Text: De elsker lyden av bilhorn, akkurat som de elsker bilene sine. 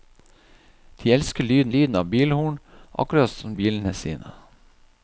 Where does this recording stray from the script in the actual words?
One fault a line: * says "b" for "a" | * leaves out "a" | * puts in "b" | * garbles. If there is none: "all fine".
* puts in "lyden"
* leaves out "de elsker"